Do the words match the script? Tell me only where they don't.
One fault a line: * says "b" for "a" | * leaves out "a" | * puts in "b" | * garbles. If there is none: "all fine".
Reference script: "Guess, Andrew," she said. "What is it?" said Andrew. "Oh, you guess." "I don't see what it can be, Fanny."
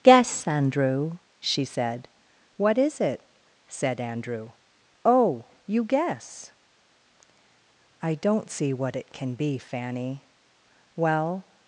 * puts in "Well"